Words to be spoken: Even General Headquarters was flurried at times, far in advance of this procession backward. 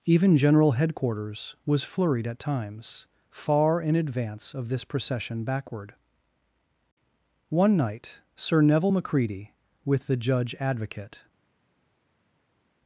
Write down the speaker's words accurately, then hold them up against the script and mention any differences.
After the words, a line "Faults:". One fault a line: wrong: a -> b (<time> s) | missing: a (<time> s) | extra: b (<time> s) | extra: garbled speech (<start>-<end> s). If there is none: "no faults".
Even General Headquarters was flurried at times, far in advance of this procession backward. One night Sir Neville Macready, with the judge advocate
Faults:
extra: One night Sir Neville Macready with the judge advocate (7.5 s)